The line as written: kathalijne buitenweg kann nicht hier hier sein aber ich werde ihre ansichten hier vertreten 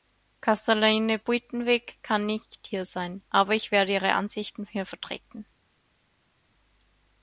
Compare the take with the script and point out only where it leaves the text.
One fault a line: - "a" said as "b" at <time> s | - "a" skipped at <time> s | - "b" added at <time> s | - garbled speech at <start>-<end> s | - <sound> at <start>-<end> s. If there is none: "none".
- "hier" skipped at 2.8 s